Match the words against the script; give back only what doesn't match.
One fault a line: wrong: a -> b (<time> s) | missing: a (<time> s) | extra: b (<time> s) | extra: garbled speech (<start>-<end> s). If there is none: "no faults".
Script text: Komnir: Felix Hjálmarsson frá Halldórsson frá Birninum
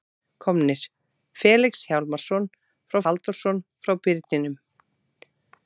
no faults